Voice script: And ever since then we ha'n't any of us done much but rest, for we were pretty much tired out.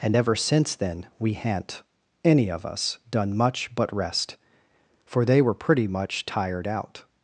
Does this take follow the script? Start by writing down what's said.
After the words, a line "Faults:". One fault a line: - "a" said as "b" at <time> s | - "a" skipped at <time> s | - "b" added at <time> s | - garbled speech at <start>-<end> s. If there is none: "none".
And ever since then we ha'n't any of us done much but rest, for they were pretty much tired out.
Faults:
- "we" said as "they" at 5.2 s